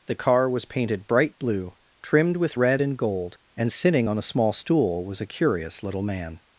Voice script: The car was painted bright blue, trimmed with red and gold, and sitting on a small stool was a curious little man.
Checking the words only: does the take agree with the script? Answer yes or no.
yes